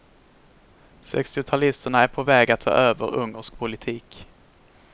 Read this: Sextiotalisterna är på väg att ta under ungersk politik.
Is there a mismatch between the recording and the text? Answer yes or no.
yes